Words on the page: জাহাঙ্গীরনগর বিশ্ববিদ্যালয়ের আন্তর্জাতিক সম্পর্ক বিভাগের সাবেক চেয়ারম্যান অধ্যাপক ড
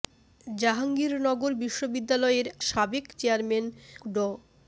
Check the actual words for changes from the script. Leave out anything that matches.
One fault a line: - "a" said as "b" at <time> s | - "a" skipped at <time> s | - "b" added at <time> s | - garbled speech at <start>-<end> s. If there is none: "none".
- "আন্তর্জাতিক সম্পর্ক বিভাগের" skipped at 2.5 s
- "অধ্যাপক" skipped at 3.6 s